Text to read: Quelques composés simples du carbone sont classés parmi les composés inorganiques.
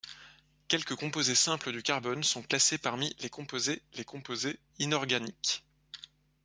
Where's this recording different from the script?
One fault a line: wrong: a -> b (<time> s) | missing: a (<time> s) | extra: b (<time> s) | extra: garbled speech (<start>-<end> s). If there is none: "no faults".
extra: les composés (3.9 s)